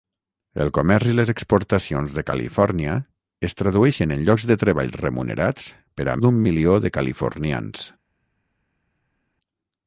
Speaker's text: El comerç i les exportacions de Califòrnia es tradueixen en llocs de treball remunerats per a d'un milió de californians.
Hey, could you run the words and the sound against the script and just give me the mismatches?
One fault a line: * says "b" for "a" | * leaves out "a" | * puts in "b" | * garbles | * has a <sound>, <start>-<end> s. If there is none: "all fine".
all fine